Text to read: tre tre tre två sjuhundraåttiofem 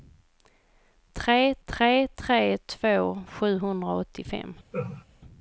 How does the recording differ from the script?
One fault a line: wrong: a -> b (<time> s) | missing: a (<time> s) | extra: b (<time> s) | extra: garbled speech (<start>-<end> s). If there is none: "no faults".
no faults